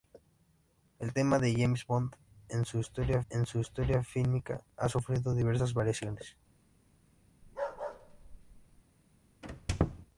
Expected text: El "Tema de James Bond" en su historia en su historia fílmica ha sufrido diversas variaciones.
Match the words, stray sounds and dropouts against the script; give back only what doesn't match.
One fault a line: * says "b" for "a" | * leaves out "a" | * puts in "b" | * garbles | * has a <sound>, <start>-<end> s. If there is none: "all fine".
* has a bark, 7.4-8.8 s
* has a squeak, 9.4-10.1 s